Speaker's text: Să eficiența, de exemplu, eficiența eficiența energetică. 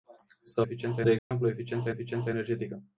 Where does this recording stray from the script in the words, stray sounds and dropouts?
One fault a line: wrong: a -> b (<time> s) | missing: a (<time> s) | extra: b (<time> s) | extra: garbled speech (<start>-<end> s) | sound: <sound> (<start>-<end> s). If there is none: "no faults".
sound: dropout (1.2-1.3 s)